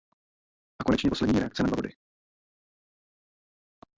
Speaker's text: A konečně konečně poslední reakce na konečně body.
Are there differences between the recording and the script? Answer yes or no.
yes